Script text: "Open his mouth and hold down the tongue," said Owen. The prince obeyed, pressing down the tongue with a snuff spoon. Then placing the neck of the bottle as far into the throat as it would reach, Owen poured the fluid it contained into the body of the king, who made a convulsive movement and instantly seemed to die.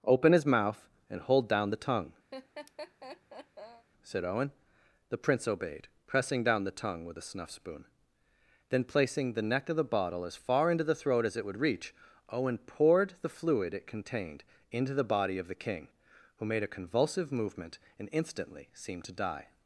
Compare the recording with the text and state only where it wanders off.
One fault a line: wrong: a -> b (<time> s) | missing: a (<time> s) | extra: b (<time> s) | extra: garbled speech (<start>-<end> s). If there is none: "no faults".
no faults